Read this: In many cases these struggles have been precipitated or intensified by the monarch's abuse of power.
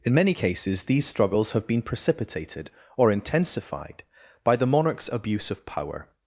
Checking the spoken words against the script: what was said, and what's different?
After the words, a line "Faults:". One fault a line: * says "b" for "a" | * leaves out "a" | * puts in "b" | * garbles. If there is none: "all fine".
In many cases these struggles have been precipitated or intensified by the monarch's abuse of power.
Faults:
all fine